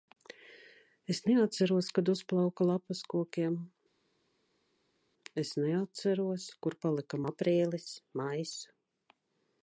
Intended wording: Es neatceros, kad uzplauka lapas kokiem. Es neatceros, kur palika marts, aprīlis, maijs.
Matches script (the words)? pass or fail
fail